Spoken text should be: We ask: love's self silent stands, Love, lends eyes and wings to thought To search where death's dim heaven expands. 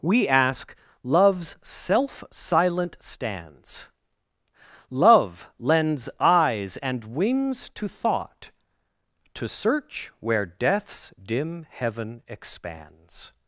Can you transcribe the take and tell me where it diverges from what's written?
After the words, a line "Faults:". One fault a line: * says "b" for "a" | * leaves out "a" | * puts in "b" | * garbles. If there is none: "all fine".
We ask: love's self silent stands, Love, lends eyes and wings to thought To search where death's dim heaven expands.
Faults:
all fine